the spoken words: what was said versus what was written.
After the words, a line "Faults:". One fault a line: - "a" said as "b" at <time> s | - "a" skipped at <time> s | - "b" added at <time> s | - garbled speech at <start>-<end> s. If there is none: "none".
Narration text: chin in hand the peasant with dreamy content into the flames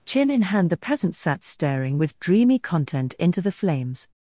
chin in hand the peasant sat staring with dreamy content into the flames
Faults:
- "sat staring" added at 1.1 s